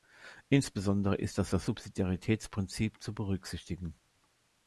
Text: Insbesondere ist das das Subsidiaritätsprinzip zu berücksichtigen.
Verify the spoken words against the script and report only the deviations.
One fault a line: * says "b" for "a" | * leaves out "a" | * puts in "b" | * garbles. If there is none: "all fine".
all fine